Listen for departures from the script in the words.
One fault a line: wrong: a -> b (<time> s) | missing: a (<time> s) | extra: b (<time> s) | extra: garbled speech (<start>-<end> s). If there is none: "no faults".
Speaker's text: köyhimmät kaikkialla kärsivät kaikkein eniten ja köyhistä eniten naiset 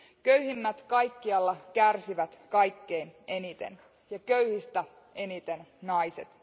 no faults